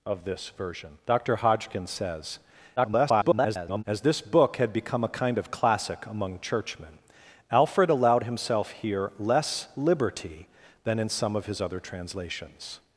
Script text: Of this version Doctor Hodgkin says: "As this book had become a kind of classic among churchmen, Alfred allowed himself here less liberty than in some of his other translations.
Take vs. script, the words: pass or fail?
fail